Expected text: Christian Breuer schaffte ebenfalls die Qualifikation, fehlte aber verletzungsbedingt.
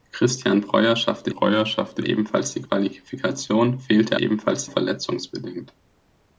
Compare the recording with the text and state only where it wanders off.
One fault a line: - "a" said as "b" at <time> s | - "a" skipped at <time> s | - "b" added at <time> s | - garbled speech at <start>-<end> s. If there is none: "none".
- "Breuer schaffte" added at 1.3 s
- "aber" said as "ebenfalls" at 4.2 s